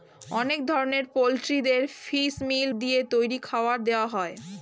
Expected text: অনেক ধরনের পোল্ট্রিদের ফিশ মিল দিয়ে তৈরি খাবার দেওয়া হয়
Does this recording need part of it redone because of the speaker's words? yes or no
no